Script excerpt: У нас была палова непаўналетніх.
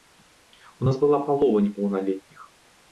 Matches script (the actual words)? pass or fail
pass